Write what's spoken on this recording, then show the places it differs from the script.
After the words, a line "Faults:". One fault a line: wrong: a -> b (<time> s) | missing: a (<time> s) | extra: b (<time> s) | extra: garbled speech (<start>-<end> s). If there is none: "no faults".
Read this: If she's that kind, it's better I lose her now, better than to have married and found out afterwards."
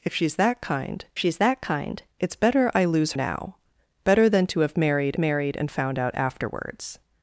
If she's that kind she's that kind, it's better I lose now, better than to have married married and found out afterwards."
Faults:
extra: she's that kind (1.2 s)
missing: her (3.1 s)
extra: married (5.2 s)